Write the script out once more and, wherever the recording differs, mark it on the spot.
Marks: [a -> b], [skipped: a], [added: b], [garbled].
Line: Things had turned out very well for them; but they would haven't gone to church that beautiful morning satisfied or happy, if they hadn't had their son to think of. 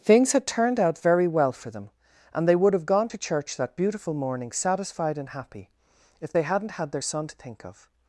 Things had turned out very well for them; [but -> and] they would [haven't -> have] gone to church that beautiful morning satisfied [or -> and] happy, if they hadn't had their son to think of.